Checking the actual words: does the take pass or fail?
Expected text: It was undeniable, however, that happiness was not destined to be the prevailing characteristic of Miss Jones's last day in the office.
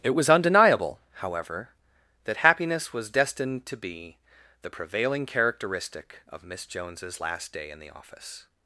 fail